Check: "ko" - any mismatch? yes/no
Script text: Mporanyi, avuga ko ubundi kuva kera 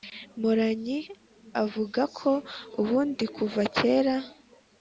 no